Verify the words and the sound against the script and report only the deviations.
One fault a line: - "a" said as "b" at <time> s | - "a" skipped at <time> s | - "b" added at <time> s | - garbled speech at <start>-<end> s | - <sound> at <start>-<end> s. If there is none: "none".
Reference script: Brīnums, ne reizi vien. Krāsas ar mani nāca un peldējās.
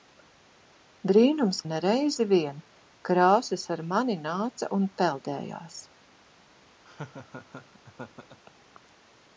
- laugh at 6.8-8.4 s